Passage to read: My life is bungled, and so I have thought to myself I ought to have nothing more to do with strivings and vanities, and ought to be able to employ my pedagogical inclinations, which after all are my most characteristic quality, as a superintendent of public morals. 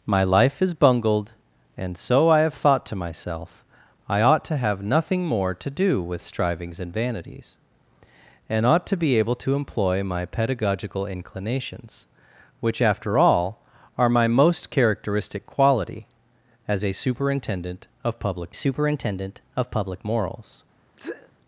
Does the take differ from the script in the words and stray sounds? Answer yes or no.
yes